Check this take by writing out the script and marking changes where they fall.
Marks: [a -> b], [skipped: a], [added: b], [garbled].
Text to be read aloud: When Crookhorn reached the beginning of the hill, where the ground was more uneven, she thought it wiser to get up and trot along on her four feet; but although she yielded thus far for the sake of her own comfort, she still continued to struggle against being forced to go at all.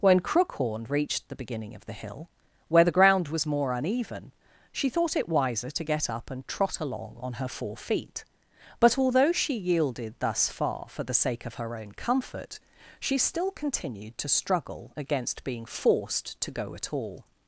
When Crookhorn reached the beginning of the hill, where the ground was more uneven, she thought it wiser to get up and trot along on her four feet; but although she yielded thus far for the sake of her own comfort, she still continued to struggle against being forced to go at all.